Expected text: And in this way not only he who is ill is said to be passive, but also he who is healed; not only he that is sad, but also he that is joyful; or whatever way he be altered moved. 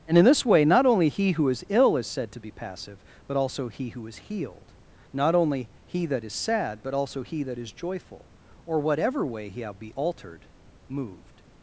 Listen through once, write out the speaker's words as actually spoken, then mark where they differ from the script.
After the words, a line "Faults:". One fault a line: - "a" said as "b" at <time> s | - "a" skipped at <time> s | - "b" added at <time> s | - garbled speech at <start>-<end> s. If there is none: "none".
And in this way not only he who is ill is said to be passive, but also he who is healed; not only he that is sad, but also he that is joyful; or whatever way he be altered moved.
Faults:
none